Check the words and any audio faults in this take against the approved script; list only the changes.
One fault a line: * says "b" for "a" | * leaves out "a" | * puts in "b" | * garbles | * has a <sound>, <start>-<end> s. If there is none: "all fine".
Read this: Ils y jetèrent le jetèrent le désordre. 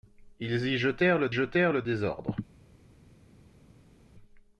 all fine